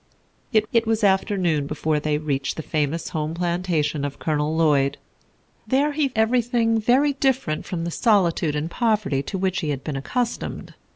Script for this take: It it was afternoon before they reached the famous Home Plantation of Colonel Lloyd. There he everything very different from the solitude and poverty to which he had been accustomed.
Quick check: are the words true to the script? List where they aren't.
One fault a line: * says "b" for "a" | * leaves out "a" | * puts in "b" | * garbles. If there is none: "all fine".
all fine